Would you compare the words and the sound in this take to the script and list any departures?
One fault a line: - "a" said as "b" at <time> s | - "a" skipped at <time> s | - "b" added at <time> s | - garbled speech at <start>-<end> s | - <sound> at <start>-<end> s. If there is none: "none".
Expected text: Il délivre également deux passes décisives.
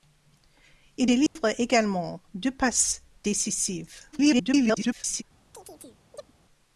- dropout at 1.3-1.4 s
- garbled speech at 4.1-5.2 s
- chirp at 5.5-6.3 s